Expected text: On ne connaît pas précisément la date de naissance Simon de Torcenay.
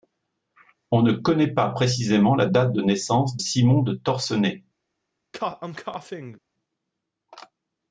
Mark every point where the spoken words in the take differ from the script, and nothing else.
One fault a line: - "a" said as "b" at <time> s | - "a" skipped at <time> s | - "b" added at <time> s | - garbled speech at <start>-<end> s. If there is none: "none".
none